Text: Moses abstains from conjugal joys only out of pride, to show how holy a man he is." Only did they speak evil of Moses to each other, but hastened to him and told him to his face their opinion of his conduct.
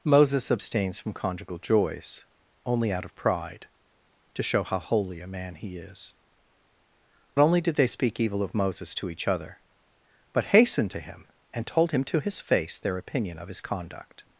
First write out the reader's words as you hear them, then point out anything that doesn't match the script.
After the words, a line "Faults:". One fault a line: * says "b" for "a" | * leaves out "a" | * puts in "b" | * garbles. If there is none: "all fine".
Moses abstains from conjugal joys only out of pride, to show how holy a man he is." Only did they speak evil of Moses to each other, but hastened to him and told him to his face their opinion of his conduct.
Faults:
all fine